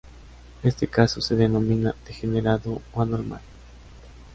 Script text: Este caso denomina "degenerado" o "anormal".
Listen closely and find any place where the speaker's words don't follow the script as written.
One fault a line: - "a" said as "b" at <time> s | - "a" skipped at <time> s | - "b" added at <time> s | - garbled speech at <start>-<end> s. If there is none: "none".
- "se" added at 1.2 s